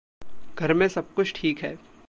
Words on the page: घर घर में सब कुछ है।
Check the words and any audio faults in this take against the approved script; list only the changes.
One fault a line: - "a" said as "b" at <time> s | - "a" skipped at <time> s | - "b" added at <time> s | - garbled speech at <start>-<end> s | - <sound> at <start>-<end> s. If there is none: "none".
- "घर" skipped at 0.7 s
- "ठीक" added at 1.3 s